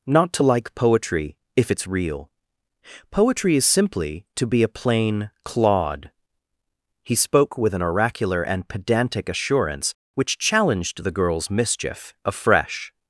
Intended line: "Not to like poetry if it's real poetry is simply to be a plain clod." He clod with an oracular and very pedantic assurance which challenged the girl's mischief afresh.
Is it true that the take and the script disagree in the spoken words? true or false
true